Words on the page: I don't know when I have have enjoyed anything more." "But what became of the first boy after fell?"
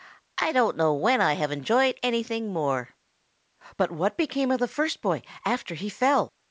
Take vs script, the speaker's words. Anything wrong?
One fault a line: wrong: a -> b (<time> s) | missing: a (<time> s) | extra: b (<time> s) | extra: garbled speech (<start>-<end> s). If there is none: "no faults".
missing: have (1.5 s)
extra: he (5.8 s)